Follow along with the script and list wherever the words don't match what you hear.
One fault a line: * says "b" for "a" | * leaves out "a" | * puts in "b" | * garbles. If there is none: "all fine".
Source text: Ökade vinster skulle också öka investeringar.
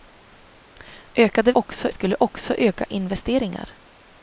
* says "också" for "vinster"